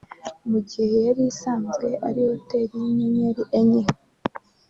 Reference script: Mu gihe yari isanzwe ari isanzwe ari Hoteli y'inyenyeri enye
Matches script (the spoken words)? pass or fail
fail